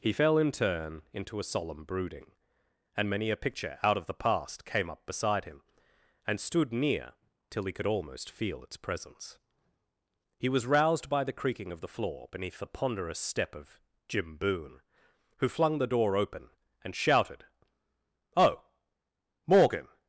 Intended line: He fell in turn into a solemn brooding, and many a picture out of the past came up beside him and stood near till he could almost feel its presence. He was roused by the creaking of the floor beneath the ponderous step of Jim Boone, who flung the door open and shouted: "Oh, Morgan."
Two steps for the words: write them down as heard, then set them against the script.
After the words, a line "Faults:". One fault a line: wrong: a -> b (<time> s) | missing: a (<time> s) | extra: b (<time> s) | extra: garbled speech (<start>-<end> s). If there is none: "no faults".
He fell in turn into a solemn brooding, and many a picture out of the past came up beside him and stood near till he could almost feel its presence. He was roused by the creaking of the floor beneath the ponderous step of Jim Boone, who flung the door open and shouted: "Oh, Morgan."
Faults:
no faults